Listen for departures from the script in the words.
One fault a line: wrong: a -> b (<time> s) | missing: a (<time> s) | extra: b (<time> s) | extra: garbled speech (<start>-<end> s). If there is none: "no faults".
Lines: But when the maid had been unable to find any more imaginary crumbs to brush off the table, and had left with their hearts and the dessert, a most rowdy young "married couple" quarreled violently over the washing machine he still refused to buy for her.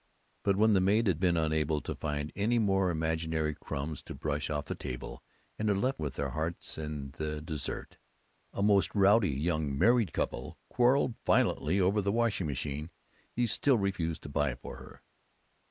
no faults